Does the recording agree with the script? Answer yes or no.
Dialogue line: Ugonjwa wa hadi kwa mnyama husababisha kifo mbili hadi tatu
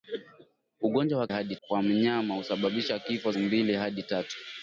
yes